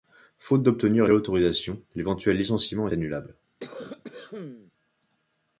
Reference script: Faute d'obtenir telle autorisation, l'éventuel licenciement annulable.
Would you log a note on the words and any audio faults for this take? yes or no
yes